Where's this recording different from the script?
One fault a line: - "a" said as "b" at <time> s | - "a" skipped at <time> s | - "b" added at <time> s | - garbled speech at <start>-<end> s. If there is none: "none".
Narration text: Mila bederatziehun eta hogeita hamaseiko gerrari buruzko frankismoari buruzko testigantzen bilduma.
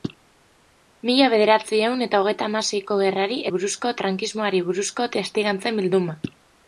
none